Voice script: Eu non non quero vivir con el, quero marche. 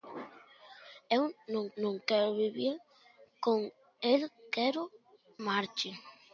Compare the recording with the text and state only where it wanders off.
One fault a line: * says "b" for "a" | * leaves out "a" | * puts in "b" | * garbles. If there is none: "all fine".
all fine